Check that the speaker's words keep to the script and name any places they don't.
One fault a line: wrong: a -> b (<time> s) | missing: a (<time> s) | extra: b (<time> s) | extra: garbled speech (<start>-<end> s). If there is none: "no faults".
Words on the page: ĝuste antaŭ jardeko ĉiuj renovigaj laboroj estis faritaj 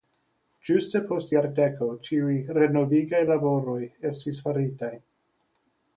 wrong: antaŭ -> post (1.1 s)